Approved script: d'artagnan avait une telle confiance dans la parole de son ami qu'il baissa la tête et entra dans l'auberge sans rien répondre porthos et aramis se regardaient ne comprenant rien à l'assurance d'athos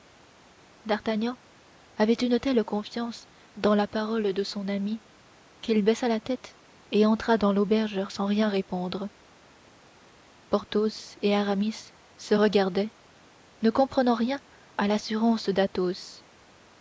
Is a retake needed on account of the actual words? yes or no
no